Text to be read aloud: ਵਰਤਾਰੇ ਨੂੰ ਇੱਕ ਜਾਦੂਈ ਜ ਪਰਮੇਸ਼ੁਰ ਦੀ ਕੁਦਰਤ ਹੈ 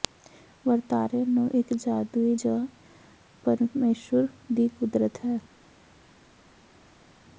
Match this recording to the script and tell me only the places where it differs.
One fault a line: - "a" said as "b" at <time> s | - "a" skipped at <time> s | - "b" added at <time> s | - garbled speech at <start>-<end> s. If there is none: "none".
none